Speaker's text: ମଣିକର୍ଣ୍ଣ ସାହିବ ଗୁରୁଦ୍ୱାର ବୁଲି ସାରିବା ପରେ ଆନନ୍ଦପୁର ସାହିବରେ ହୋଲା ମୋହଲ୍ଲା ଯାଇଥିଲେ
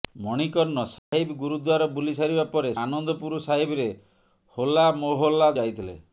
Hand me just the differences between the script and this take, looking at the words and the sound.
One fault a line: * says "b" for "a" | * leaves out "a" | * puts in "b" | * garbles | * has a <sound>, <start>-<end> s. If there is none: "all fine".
* has a dropout, 1.0-1.1 s